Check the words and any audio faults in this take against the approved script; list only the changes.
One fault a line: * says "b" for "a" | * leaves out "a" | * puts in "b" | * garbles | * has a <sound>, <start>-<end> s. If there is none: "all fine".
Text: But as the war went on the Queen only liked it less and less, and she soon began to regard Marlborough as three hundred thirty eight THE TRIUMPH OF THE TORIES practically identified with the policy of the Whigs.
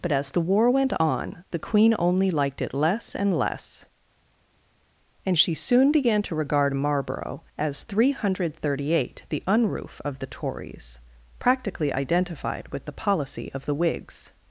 * says "Unroof" for "TRIUMPH"